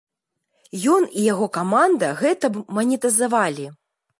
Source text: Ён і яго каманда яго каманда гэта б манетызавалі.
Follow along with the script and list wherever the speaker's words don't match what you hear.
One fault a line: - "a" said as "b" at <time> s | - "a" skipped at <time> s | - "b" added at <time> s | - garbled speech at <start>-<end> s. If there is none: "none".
- "яго каманда" skipped at 2.1 s